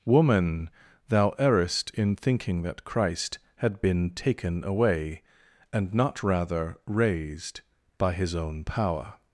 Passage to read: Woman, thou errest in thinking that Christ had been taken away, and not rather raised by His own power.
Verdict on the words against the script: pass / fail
pass